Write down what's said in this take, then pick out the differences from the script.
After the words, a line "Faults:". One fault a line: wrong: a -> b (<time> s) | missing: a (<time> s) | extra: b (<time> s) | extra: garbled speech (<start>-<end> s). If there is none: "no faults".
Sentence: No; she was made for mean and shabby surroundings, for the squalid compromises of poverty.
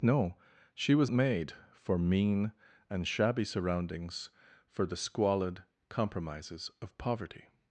No; she was made for mean and shabby surroundings, for the squalid compromises of poverty.
Faults:
no faults